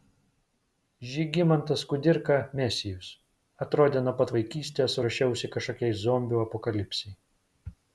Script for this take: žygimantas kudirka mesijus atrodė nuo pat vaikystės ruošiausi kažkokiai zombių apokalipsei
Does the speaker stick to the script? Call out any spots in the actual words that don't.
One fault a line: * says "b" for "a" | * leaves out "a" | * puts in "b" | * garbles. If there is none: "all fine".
all fine